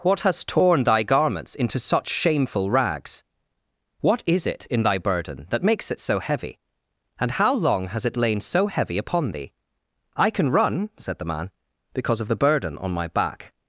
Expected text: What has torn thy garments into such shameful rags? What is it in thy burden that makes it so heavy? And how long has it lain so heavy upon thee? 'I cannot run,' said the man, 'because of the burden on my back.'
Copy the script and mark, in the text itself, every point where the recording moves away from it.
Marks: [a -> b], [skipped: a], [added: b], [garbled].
What has torn thy garments into such shameful rags? What is it in thy burden that makes it so heavy? And how long has it lain so heavy upon thee? 'I [cannot -> can] run,' said the man, 'because of the burden on my back.'